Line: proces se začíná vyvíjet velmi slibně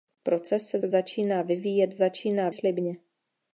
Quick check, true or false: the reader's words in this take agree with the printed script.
false